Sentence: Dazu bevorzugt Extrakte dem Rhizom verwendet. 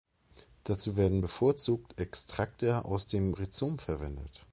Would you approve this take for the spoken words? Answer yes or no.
no